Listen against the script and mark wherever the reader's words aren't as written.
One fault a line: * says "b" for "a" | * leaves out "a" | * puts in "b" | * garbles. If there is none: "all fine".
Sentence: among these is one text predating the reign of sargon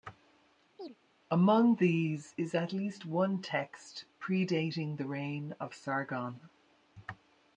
* puts in "at least"